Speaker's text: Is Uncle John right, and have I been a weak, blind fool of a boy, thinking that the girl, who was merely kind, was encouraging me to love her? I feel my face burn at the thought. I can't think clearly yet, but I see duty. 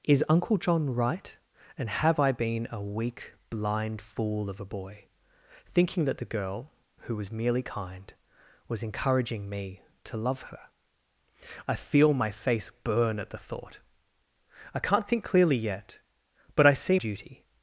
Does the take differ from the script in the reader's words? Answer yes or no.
no